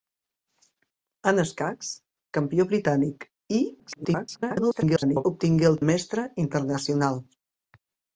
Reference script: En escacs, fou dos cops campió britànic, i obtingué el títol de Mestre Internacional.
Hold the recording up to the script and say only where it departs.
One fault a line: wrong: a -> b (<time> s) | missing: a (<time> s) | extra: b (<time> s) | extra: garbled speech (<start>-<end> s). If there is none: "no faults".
missing: fou dos cops (1.9 s)
extra: garbled speech (3.8-5.2 s)
missing: títol (5.8 s)